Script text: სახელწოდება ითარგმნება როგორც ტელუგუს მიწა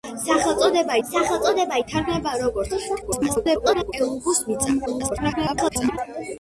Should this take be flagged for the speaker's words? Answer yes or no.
yes